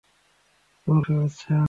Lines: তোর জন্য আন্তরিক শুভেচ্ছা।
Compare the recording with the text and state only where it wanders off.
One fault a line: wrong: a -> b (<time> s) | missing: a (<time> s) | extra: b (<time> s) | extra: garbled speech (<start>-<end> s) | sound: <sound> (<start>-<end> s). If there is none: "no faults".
missing: জন্য আন্তরিক (1.0 s)